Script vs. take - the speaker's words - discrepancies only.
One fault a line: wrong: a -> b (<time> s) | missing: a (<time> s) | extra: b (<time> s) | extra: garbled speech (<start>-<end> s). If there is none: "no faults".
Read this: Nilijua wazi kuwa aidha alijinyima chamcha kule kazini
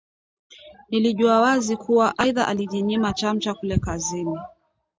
no faults